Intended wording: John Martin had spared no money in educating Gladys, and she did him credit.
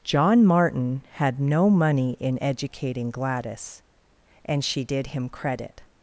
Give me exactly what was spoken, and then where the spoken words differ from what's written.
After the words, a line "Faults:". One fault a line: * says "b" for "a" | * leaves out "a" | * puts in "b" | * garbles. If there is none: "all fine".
John Martin had no money in educating Gladys, and she did him credit.
Faults:
* leaves out "spared"